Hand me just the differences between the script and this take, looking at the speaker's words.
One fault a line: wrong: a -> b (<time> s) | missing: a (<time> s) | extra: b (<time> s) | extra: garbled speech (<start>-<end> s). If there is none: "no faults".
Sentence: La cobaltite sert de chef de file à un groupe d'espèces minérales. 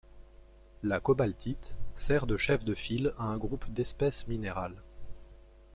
no faults